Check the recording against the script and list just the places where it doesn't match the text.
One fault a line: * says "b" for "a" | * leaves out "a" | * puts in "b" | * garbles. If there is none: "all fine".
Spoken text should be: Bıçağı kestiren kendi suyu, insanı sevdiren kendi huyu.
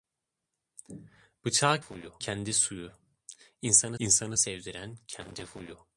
* says "huyu" for "kestiren"
* puts in "insanı"